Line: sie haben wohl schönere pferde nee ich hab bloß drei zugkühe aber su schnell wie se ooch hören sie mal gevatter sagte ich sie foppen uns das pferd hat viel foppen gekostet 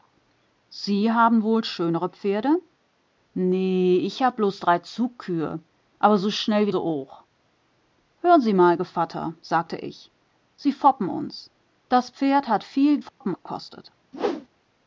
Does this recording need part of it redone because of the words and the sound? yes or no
yes